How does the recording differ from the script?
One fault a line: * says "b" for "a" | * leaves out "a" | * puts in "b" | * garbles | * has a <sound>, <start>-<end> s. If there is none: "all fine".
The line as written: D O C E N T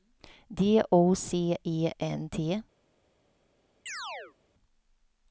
* has a chirp, 3.9-4.4 s